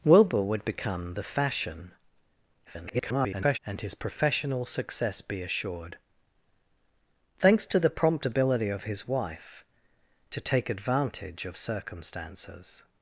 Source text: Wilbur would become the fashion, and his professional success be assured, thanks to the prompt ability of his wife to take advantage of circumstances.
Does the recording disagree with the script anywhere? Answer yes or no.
yes